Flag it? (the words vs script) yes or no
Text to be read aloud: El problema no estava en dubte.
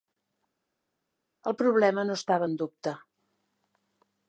no